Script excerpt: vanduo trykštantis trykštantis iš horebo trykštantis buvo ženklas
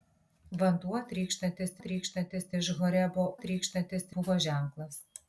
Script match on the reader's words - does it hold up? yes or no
yes